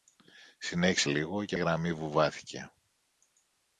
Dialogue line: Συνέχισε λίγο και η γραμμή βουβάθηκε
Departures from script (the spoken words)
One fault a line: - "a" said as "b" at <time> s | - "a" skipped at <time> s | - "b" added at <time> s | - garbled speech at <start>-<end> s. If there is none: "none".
none